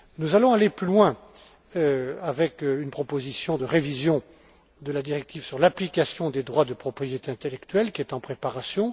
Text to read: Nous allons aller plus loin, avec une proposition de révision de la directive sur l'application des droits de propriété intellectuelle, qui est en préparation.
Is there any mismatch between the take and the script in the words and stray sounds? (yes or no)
no